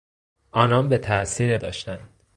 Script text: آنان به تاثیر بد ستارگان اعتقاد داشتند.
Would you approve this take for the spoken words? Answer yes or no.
no